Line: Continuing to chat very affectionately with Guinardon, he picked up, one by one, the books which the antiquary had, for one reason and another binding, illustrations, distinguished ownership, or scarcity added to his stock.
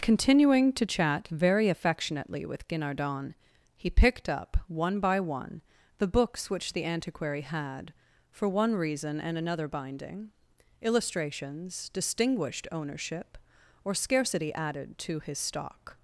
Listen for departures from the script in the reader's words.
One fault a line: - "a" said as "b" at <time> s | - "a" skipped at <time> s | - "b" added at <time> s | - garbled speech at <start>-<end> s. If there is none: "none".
none